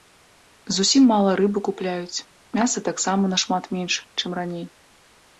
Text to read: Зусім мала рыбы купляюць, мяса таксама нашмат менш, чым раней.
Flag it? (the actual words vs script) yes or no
no